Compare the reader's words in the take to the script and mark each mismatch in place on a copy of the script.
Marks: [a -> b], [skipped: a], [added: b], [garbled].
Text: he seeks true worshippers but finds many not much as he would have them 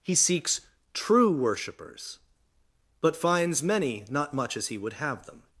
he seeks true worshippers but finds many not much as he would have them